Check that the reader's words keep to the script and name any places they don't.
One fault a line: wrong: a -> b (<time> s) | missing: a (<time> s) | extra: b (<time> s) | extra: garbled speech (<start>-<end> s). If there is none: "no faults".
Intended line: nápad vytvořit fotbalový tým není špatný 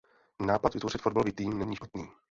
no faults